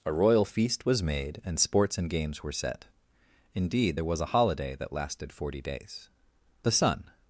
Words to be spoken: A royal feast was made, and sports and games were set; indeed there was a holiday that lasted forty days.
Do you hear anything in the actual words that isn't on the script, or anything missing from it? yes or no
yes